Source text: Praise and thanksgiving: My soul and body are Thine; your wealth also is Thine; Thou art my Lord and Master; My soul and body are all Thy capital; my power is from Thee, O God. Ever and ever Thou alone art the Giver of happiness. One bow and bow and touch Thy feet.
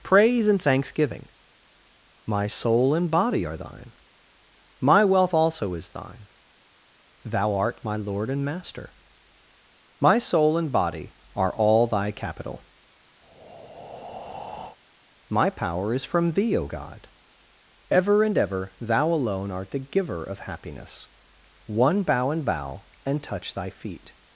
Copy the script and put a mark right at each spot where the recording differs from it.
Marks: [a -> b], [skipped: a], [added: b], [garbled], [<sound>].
Praise and thanksgiving: My soul and body are Thine; [your -> my] wealth also is Thine; Thou art my Lord and Master; My soul and body are all Thy capital; [breath] my power is from Thee, O God. Ever and ever Thou alone art the Giver of happiness. One bow and bow and touch Thy feet.